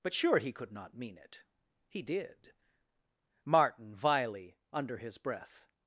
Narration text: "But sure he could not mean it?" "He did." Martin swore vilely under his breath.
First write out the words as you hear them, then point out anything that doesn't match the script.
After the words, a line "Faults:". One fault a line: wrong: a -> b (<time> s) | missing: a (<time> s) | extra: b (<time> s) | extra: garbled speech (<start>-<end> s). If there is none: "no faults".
"But sure he could not mean it?" "He did." Martin vilely under his breath.
Faults:
missing: swore (4.0 s)